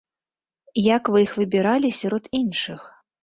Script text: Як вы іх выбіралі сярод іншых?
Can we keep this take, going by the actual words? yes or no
yes